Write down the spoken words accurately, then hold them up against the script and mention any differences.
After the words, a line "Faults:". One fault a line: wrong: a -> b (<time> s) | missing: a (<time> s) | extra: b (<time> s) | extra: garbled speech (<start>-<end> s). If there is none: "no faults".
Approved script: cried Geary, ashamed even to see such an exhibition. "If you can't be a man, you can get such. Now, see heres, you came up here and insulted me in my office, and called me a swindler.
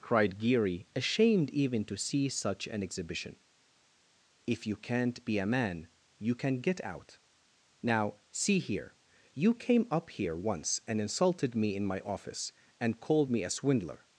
cried Geary, ashamed even to see such an exhibition. "If you can't be a man, you can get out. Now, see here, you came up here once and insulted me in my office, and called me a swindler.
Faults:
wrong: such -> out (6.8 s)
wrong: heres -> here (8.6 s)
extra: once (10.3 s)